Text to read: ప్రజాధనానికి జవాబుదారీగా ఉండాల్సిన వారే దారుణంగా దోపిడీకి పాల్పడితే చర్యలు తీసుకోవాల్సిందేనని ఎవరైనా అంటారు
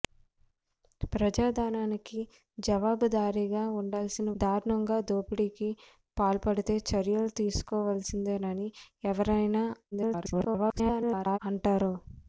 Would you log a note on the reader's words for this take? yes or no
yes